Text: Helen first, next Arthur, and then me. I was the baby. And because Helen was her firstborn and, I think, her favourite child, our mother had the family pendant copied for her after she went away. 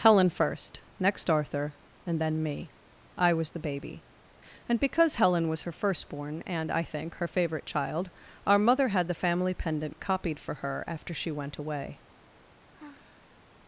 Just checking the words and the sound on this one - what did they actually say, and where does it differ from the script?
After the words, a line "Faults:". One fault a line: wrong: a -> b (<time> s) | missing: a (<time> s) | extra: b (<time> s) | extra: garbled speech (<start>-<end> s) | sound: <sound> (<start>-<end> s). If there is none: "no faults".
Helen first, next Arthur, and then me. I was the baby. And because Helen was her firstborn and, I think, her favourite child, our mother had the family pendant copied for her after she went away.
Faults:
sound: sigh (12.7-13.4 s)